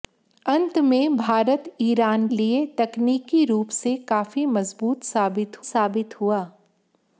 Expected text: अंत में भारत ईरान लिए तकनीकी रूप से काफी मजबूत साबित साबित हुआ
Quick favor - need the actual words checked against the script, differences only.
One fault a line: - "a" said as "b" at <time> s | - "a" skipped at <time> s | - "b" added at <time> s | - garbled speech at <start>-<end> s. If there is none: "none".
none